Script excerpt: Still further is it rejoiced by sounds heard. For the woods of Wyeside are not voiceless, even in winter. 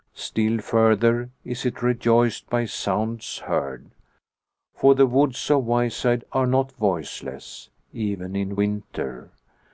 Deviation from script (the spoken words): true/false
false